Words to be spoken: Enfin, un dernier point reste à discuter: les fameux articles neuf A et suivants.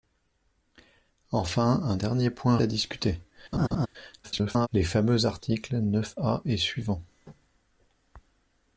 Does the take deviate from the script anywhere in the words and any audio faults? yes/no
yes